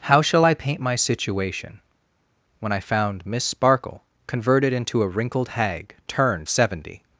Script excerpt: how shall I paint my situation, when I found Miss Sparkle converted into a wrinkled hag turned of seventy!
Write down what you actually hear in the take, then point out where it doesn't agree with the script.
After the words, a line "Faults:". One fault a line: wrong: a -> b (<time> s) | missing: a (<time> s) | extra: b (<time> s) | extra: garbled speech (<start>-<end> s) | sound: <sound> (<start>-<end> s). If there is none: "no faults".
how shall I paint my situation, when I found Miss Sparkle converted into a wrinkled hag turned seventy!
Faults:
missing: of (6.5 s)